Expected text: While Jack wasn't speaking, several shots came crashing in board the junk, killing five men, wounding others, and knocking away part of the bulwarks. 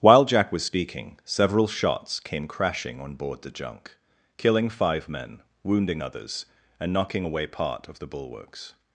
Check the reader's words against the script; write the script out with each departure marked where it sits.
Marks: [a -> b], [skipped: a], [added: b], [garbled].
While Jack [wasn't -> was] speaking, several shots came crashing [in -> on] board the junk, killing five men, wounding others, and knocking away part of the bulwarks.